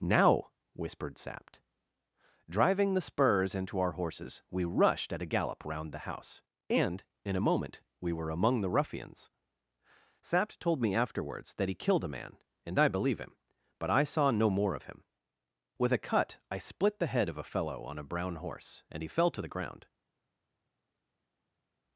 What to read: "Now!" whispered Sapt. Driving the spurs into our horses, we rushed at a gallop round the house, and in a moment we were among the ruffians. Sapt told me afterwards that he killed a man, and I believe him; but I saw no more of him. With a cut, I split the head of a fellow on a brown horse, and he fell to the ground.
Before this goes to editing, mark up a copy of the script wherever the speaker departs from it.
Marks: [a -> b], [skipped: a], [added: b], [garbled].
"Now!" whispered Sapt. Driving the spurs into our horses, we rushed at a gallop round the house, and in a moment we were among the ruffians. Sapt told me afterwards that he killed a man, and I believe him; but I saw no more of him. With a cut, I split the head of a fellow on a brown horse, and he fell to the ground.